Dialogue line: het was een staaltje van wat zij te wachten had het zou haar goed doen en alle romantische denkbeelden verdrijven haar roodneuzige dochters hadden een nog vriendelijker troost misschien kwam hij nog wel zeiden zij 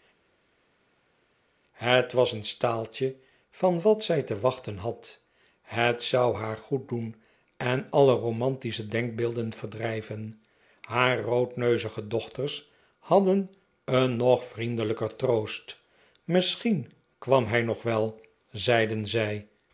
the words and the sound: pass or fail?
pass